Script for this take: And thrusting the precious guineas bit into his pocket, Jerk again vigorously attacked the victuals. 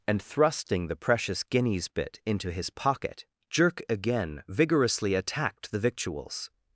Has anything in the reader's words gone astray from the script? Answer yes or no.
no